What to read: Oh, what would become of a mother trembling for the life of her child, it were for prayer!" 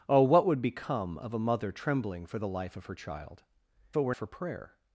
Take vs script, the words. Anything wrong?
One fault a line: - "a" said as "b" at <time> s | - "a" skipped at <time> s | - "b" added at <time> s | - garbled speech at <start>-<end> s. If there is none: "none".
none